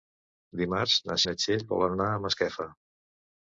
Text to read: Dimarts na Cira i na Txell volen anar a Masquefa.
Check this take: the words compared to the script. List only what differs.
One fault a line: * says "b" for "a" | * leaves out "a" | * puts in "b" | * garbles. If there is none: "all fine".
* leaves out "Cira"